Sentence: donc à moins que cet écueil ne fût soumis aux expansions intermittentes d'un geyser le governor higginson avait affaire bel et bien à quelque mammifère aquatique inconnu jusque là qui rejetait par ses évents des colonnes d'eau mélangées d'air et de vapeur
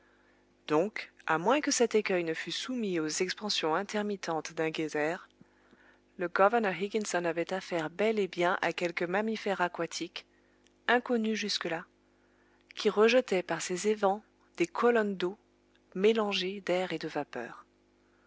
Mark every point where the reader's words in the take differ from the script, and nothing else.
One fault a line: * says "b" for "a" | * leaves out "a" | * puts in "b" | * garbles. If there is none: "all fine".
all fine